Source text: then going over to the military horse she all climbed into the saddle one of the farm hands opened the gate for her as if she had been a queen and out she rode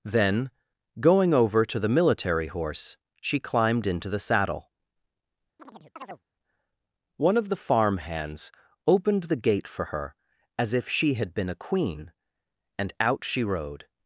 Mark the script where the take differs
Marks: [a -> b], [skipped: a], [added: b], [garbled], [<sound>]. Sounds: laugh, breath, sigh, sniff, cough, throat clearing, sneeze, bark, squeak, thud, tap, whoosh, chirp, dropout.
then going over to the military horse she [skipped: all] climbed into the saddle [chirp] one of the farm hands opened the gate for her as if she had been a queen and out she rode